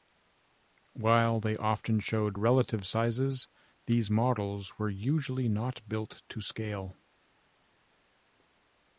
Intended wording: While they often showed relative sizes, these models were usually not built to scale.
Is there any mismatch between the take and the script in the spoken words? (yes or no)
no